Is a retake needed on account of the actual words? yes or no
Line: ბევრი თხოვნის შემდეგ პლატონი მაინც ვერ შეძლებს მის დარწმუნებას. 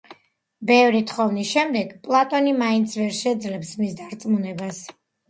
no